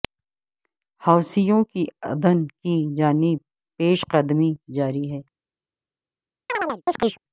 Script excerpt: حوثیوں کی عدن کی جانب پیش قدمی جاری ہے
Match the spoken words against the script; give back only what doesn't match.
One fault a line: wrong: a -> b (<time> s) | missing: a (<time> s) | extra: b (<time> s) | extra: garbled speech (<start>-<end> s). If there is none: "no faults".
no faults